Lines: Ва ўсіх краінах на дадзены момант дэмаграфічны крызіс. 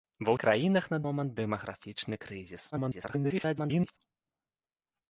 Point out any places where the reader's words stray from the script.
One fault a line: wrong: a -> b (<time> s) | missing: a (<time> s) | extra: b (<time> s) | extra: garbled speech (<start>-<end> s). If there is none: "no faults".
missing: ўсіх (0.3 s)
missing: дадзены (1.0 s)
extra: garbled speech (2.7-4.0 s)